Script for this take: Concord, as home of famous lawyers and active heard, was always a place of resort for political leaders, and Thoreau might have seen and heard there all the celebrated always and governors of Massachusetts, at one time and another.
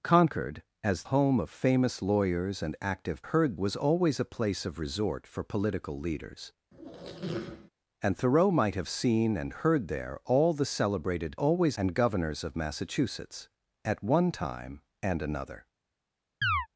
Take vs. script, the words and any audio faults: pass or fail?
fail